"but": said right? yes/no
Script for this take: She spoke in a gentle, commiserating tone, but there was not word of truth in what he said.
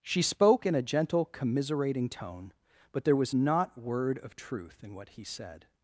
yes